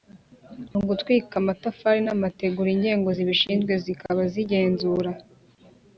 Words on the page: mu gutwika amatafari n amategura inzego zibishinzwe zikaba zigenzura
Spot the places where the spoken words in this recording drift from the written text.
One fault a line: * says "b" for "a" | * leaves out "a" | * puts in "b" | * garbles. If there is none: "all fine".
all fine